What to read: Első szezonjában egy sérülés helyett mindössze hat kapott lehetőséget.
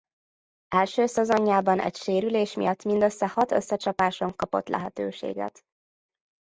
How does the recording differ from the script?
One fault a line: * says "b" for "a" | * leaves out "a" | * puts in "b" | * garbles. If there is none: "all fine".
* says "miatt" for "helyett"
* puts in "összecsapáson"